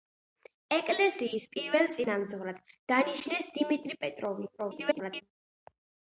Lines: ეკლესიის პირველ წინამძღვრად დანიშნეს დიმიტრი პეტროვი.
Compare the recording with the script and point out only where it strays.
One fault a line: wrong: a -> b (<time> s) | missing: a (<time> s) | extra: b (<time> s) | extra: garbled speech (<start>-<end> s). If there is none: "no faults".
extra: garbled speech (4.6-5.2 s)